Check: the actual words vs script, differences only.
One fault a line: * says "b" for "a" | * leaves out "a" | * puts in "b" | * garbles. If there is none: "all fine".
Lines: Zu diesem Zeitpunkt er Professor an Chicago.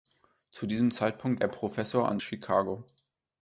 all fine